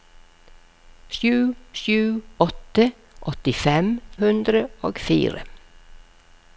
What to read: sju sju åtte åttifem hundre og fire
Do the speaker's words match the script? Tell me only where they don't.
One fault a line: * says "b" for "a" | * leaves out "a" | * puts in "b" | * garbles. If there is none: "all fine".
all fine